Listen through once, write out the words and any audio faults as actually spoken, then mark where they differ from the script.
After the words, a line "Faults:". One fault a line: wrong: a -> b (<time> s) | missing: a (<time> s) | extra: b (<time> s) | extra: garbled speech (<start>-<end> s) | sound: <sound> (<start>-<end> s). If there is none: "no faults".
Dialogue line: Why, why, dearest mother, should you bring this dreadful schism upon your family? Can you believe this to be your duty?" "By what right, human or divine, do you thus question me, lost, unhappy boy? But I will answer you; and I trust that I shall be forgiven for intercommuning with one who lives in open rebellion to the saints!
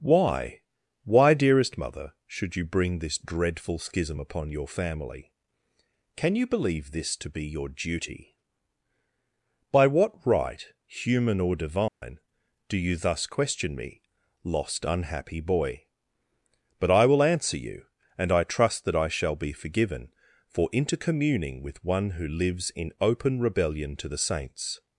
Why, why, dearest mother, should you bring this dreadful schism upon your family? Can you believe this to be your duty?" "By what right, human or divine, do you thus question me, lost, unhappy boy? But I will answer you; and I trust that I shall be forgiven for intercommuning with one who lives in open rebellion to the saints!
Faults:
sound: dropout (11.9-12.0 s)